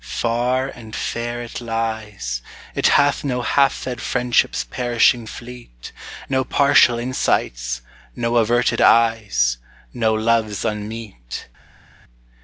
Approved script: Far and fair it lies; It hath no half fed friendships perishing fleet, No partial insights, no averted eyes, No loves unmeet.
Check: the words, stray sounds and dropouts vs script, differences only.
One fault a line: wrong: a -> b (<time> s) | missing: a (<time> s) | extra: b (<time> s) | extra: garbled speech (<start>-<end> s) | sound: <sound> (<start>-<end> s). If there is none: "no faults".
no faults